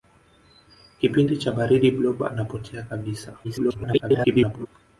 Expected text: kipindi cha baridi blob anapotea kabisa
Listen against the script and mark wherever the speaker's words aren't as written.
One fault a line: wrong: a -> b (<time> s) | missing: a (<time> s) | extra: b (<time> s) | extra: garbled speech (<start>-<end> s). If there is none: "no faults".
extra: garbled speech (3.4-4.7 s)